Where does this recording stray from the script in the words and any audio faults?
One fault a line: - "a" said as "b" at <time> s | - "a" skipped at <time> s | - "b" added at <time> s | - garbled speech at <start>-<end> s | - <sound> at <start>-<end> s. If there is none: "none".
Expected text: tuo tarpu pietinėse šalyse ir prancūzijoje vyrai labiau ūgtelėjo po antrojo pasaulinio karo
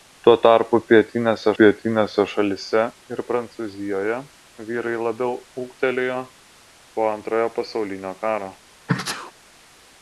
- "pietinėse" added at 1.6 s
- sneeze at 8.9-9.3 s